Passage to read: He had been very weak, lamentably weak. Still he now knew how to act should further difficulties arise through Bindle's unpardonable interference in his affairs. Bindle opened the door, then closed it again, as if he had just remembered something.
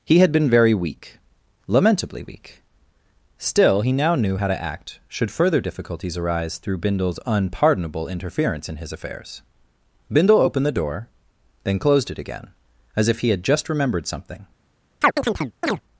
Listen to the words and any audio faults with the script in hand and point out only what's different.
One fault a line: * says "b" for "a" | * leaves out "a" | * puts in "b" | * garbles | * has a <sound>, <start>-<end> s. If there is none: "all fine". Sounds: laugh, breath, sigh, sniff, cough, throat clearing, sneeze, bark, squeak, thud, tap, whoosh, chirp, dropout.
* has a chirp, 15.0-15.8 s